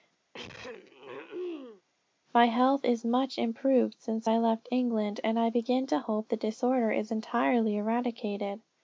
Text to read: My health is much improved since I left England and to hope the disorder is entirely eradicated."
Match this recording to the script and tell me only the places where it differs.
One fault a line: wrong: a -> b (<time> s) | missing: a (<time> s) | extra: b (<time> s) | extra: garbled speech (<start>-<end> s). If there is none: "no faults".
extra: I begin (5.4 s)